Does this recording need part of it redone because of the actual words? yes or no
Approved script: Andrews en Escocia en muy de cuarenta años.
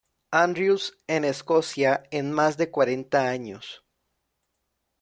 yes